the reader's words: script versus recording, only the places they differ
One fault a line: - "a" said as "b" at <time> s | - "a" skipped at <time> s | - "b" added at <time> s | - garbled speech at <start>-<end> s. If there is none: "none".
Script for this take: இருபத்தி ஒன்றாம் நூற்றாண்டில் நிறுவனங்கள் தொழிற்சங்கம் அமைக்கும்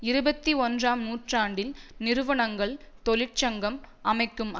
none